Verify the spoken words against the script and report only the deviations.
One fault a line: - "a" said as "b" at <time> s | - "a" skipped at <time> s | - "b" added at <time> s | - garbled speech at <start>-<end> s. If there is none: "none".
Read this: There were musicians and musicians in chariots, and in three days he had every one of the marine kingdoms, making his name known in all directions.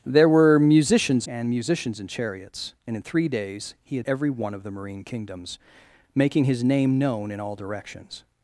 none